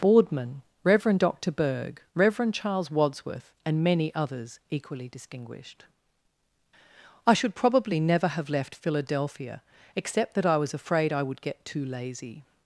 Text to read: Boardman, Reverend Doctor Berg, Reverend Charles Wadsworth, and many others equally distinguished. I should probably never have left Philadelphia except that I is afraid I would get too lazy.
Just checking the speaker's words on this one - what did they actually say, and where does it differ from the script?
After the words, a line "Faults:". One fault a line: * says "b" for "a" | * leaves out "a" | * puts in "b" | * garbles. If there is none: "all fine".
Boardman, Reverend Doctor Berg, Reverend Charles Wadsworth, and many others equally distinguished. I should probably never have left Philadelphia except that I was afraid I would get too lazy.
Faults:
* says "was" for "is"